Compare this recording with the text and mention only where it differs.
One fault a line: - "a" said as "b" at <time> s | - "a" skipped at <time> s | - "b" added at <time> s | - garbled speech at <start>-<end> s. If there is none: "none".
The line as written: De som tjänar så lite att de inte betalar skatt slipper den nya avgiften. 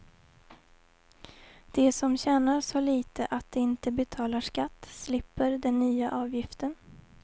none